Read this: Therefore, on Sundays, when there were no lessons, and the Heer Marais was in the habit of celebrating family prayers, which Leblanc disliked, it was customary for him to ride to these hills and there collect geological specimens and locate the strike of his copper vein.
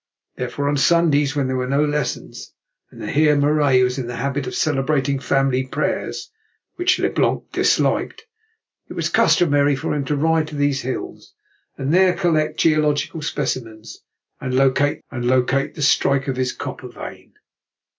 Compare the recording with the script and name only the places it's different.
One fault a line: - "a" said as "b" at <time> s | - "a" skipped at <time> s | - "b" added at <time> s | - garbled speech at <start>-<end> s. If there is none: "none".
- "and locate" added at 15.1 s